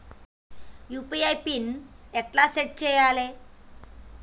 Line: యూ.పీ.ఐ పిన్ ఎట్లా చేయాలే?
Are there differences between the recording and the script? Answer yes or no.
yes